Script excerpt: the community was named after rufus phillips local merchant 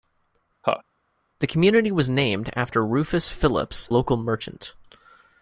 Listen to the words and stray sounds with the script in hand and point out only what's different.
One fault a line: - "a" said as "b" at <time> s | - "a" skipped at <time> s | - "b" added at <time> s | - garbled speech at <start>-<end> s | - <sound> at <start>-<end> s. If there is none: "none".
- laugh at 0.6-0.8 s